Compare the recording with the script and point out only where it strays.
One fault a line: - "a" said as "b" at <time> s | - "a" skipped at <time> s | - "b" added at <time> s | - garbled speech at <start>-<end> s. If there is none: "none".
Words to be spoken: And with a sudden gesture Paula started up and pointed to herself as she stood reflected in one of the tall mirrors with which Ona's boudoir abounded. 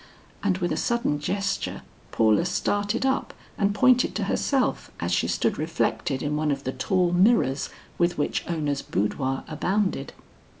none